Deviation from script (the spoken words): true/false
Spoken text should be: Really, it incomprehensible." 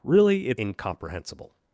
false